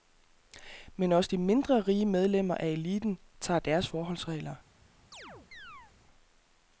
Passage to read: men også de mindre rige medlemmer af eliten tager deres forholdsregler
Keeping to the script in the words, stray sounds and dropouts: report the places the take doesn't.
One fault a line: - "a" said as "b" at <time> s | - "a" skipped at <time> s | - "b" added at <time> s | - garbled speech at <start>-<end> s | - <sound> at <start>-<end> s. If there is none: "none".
- chirp at 5.1-5.9 s